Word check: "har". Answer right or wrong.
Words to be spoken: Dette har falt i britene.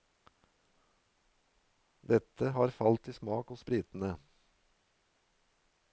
right